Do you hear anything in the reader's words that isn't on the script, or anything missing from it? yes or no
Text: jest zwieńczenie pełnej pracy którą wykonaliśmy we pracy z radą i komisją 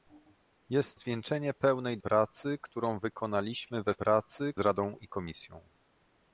no